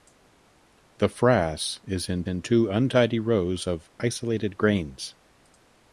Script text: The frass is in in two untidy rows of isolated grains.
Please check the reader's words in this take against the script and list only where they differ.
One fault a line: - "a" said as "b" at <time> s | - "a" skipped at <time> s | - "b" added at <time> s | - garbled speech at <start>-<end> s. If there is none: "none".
none